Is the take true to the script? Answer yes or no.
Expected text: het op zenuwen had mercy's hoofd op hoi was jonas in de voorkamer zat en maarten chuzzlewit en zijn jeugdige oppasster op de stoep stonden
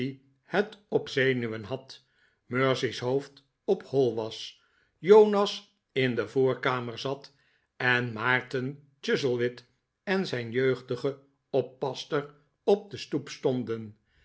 yes